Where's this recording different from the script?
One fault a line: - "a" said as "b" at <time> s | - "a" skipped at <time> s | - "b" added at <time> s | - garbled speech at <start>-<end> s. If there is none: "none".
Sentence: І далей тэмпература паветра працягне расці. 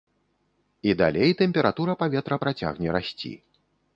none